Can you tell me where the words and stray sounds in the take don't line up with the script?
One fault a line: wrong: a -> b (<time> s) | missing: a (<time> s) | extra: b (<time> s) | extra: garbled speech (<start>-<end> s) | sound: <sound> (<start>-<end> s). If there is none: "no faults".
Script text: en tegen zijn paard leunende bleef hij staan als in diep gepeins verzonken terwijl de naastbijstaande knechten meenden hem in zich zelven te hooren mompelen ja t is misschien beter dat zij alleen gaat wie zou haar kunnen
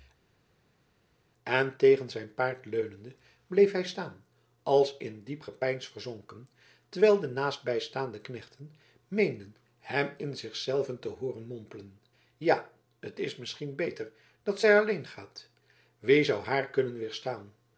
no faults